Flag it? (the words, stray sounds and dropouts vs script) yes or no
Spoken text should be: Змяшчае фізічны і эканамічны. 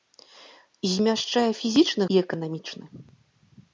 no